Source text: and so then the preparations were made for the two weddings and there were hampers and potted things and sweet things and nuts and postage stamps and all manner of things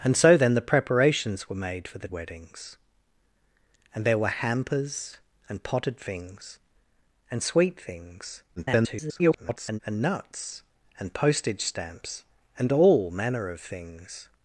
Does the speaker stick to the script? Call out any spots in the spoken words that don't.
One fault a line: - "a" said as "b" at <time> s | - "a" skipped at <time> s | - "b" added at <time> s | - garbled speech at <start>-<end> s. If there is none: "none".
- "two" skipped at 2.1 s
- garbled speech at 8.6-9.8 s